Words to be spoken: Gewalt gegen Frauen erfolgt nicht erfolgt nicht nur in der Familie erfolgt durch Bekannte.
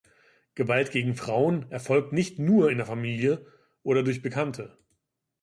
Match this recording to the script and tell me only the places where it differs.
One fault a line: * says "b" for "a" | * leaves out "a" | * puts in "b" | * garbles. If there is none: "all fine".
* leaves out "erfolgt nicht"
* says "oder" for "erfolgt"